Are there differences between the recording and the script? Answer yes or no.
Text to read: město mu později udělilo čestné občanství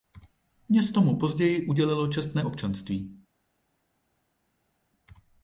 no